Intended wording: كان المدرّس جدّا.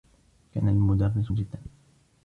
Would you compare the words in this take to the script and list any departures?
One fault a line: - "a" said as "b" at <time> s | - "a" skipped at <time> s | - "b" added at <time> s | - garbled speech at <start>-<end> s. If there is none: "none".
none